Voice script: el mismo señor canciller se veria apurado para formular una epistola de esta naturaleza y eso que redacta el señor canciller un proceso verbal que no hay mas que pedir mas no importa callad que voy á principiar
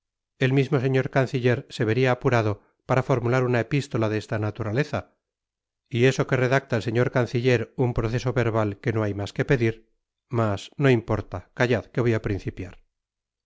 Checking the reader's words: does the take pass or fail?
pass